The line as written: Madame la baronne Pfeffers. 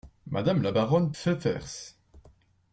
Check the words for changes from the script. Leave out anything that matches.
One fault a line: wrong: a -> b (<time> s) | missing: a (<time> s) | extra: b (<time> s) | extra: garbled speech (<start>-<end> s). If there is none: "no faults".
no faults